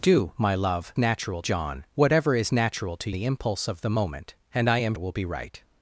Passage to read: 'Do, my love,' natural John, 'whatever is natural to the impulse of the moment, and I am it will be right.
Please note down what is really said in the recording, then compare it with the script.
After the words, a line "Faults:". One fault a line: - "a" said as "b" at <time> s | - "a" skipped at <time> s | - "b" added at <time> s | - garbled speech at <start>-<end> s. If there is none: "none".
'Do, my love,' natural John, 'whatever is natural to the impulse of the moment, and I am it will be right.
Faults:
none